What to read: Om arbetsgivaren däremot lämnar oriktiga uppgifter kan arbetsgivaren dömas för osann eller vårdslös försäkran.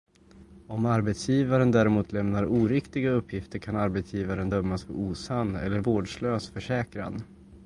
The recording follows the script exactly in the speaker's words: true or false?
true